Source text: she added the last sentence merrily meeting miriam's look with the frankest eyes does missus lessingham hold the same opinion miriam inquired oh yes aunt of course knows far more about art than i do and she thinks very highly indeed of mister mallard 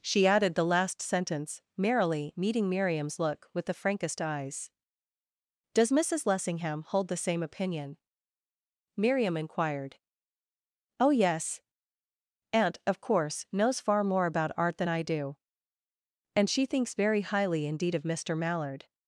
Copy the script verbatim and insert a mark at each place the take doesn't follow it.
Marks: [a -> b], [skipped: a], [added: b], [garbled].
she added the last sentence merrily meeting miriam's look with the frankest eyes does missus lessingham hold the same opinion miriam inquired oh yes aunt of course knows far more about art than i do and she thinks very highly indeed of mister mallard